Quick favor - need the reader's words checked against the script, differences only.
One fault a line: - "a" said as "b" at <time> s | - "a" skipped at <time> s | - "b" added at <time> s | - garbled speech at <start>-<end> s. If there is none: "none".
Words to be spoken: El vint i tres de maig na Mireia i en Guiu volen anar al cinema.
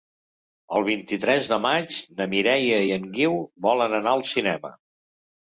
none